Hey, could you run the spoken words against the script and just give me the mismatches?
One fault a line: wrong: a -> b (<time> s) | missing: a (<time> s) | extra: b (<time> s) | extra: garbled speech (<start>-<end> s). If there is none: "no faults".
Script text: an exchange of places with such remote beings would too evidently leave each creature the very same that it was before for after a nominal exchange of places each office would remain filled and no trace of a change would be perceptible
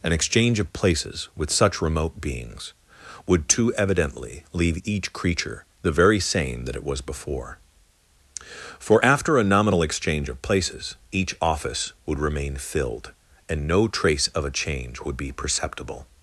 no faults